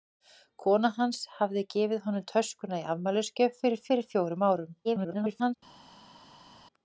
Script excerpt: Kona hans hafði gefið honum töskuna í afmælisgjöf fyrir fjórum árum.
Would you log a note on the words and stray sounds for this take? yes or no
yes